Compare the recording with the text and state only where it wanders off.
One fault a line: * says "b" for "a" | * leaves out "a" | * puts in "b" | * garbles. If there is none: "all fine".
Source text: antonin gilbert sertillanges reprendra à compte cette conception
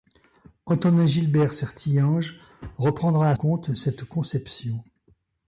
all fine